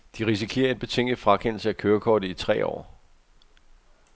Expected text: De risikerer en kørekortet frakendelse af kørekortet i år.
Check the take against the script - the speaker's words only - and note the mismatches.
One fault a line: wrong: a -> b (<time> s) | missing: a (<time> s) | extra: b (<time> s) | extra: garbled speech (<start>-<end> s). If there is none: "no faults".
wrong: kørekortet -> betinget (0.8 s)
extra: tre (2.3 s)